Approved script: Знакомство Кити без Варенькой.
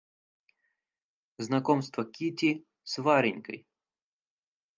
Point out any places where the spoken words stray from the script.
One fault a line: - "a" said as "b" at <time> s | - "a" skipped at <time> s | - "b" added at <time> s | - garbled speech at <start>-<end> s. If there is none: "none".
- "без" said as "с" at 2.8 s